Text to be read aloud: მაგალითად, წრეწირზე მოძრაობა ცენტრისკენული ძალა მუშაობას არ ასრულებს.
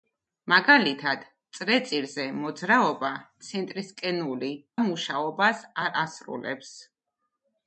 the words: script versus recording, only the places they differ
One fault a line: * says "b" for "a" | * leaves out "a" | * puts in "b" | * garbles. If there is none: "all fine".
* leaves out "ძალა"